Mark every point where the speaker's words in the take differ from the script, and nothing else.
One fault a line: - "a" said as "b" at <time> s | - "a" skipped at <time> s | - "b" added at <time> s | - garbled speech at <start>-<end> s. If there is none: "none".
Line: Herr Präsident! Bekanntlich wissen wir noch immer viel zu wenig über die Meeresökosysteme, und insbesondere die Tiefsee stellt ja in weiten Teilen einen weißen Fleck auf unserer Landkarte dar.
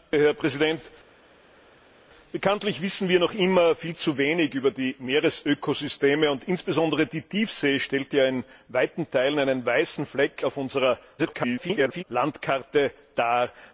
- garbled speech at 11.2-12.0 s